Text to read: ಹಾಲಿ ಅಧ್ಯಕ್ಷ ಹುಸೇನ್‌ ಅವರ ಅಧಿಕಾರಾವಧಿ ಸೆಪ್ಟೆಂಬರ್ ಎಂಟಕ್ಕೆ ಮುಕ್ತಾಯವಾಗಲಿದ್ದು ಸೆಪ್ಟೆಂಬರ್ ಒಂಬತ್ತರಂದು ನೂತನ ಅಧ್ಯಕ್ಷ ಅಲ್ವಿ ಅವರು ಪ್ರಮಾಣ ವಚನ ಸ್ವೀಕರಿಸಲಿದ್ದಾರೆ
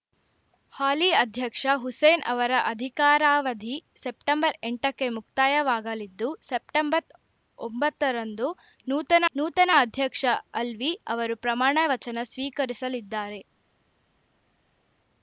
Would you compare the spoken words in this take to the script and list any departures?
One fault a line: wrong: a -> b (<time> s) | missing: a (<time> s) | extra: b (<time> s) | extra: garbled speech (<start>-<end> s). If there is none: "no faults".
extra: ನೂತನ (9.4 s)